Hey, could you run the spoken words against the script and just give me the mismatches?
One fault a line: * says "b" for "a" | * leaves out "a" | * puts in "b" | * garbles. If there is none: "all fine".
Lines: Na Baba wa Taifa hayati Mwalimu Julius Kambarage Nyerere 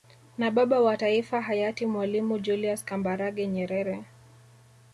all fine